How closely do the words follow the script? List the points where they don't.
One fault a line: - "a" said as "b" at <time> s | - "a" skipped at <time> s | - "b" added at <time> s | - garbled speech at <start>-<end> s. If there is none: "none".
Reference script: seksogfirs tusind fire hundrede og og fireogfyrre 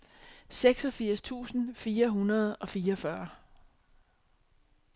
- "og" skipped at 2.7 s